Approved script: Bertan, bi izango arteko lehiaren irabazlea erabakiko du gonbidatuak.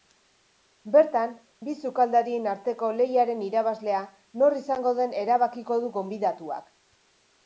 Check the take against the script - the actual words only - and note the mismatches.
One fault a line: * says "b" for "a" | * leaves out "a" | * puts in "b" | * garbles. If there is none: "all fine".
* says "sukaldarien" for "izango"
* puts in "nor izango den"